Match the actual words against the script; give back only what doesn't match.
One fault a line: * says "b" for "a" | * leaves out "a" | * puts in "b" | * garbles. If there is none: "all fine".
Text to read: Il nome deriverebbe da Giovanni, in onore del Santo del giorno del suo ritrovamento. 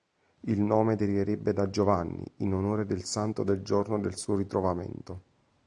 all fine